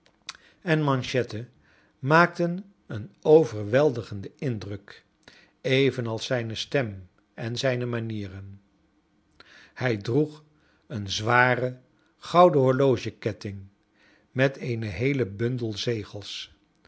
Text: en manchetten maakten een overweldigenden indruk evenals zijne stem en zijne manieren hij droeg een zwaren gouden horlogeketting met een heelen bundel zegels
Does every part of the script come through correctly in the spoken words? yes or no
yes